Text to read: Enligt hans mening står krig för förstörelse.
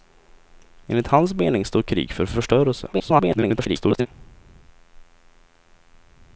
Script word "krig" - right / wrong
right